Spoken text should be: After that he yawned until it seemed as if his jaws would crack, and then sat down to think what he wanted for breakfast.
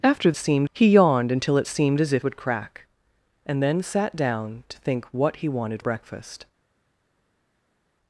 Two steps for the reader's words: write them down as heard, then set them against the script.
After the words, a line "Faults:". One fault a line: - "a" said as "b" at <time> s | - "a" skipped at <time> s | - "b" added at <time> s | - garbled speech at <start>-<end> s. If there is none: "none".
After seemed he yawned until it seemed as if would crack, and then sat down to think what he wanted breakfast.
Faults:
- "that" said as "seemed" at 0.4 s
- "his jaws" skipped at 2.2 s
- "for" skipped at 5.8 s